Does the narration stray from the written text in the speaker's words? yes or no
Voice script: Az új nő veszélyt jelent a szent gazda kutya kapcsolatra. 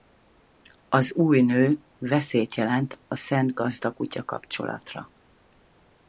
no